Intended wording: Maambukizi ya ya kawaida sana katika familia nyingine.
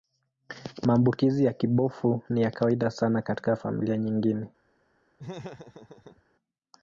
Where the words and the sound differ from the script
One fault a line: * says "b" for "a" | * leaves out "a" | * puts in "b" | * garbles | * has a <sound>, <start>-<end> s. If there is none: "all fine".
* puts in "kibofu ni"
* has a laugh, 5.2-6.2 s